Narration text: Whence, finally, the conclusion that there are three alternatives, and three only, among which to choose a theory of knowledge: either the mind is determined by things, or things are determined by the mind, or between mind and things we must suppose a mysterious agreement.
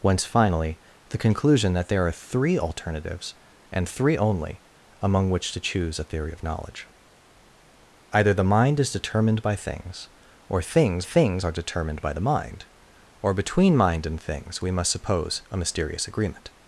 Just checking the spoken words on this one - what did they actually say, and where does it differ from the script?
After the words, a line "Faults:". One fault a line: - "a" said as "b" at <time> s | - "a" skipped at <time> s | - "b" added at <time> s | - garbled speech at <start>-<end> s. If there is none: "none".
Whence, finally, the conclusion that there are three alternatives, and three only, among which to choose a theory of knowledge: either the mind is determined by things, or things things are determined by the mind, or between mind and things we must suppose a mysterious agreement.
Faults:
- "things" added at 11.0 s